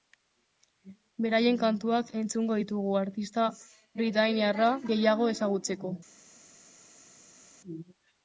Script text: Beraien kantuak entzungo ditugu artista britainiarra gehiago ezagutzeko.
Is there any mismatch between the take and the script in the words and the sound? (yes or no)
no